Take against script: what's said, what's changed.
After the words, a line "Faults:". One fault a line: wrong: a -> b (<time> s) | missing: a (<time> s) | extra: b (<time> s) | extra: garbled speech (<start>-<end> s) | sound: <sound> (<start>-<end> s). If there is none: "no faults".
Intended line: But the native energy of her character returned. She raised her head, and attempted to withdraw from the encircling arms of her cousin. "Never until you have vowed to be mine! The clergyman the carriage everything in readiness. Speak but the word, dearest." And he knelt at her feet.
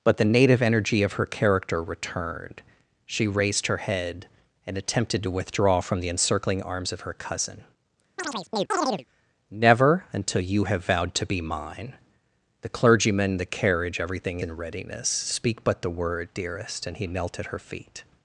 But the native energy of her character returned. She raised her head, and attempted to withdraw from the encircling arms of her cousin. "Never until you have vowed to be mine! The clergyman the carriage everything in readiness. Speak but the word, dearest." And he knelt at her feet.
Faults:
sound: chirp (8.2-9.1 s)